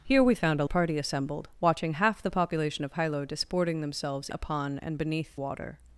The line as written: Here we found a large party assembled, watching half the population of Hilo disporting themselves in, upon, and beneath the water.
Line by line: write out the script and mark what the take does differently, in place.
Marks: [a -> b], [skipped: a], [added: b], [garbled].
Here we found a [skipped: large] party assembled, watching half the population of Hilo disporting themselves [skipped: in,] upon, and beneath [skipped: the] water.